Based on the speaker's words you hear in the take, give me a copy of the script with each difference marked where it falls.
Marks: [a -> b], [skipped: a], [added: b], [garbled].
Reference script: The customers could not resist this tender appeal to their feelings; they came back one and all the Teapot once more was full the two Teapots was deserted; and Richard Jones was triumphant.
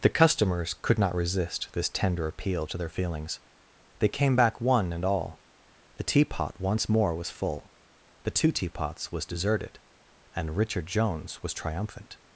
The customers could not resist this tender appeal to their feelings; they came back one and all the Teapot once more was full the two Teapots was deserted; and Richard Jones was triumphant.